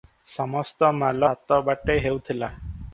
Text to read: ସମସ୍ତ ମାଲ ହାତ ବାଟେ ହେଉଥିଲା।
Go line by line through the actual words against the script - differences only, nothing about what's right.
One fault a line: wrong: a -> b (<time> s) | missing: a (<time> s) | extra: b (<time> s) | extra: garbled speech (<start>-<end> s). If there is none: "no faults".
no faults